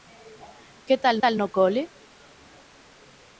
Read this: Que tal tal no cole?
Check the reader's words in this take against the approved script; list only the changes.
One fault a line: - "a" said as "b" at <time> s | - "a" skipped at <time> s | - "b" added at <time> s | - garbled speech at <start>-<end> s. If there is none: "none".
none